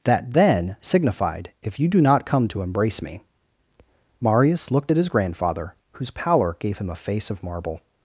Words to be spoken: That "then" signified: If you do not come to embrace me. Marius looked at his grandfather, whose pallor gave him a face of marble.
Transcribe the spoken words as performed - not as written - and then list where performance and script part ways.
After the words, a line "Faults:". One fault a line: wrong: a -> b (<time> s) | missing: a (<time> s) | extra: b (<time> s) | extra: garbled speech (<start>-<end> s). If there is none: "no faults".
That "then" signified: If you do not come to embrace me. Marius looked at his grandfather, whose pallor gave him a face of marble.
Faults:
no faults